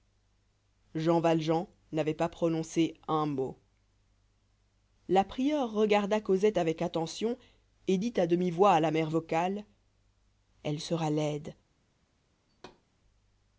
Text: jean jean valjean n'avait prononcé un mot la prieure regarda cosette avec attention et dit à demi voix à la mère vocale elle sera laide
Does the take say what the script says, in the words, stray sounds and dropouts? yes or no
no